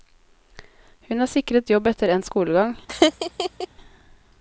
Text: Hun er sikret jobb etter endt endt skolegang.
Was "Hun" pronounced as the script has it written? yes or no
yes